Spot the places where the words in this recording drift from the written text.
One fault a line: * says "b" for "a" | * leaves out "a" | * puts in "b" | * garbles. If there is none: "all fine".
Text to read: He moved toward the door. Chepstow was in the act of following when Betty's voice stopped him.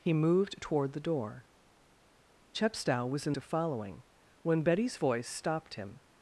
* leaves out "the act"